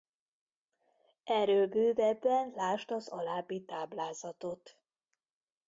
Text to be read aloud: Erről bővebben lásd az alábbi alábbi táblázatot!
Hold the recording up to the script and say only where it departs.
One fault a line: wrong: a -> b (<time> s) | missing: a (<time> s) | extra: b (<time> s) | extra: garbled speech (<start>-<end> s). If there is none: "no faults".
missing: alábbi (3.6 s)